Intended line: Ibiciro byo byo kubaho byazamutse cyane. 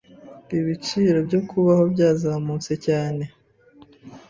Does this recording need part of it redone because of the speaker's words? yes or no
yes